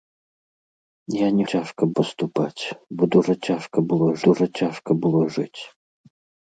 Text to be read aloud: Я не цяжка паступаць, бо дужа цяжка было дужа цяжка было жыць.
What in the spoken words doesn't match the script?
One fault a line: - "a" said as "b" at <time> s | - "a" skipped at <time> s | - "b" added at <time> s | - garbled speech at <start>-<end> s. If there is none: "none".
none